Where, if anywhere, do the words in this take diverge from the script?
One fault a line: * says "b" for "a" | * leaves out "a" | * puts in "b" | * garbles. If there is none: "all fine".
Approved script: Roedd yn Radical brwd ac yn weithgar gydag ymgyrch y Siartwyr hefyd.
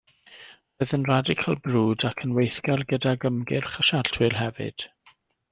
all fine